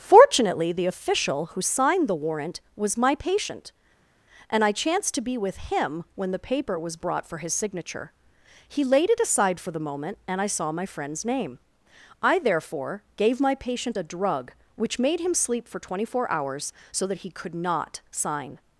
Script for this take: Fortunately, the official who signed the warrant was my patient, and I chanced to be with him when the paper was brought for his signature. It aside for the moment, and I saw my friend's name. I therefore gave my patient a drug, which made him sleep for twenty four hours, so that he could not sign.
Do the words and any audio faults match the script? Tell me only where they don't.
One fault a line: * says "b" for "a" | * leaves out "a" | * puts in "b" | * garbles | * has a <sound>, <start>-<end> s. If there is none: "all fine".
* puts in "He laid"